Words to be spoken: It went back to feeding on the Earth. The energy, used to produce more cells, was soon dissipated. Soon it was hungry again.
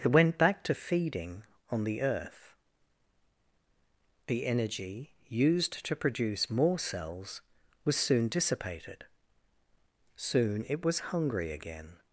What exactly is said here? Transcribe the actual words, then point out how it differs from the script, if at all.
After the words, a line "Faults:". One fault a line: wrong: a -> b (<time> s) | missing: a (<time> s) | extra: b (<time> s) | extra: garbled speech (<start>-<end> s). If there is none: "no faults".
It went back to feeding on the Earth. The energy, used to produce more cells, was soon dissipated. Soon it was hungry again.
Faults:
no faults